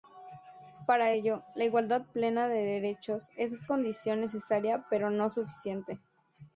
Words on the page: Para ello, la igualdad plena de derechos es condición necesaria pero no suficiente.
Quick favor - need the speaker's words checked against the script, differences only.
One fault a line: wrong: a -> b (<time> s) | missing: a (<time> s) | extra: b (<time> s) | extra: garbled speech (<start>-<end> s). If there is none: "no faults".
no faults